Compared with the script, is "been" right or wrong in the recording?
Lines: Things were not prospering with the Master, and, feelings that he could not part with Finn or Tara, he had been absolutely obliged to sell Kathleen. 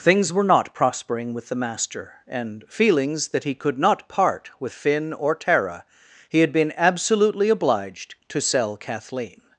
right